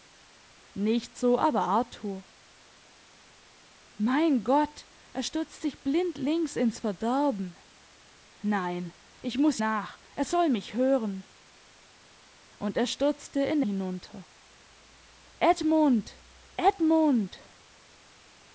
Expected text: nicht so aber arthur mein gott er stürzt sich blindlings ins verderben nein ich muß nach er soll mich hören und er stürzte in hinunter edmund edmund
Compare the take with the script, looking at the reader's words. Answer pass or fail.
pass